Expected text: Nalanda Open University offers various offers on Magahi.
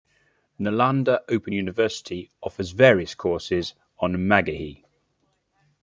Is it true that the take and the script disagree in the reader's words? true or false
true